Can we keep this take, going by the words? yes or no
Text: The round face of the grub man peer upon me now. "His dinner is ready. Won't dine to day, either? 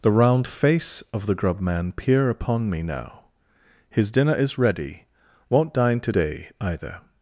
yes